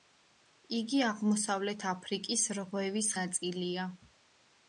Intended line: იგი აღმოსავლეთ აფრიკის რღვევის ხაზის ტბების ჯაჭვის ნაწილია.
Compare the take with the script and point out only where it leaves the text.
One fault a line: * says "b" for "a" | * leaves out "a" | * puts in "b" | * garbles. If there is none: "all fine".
* leaves out "ხაზის ტბების ჯაჭვის"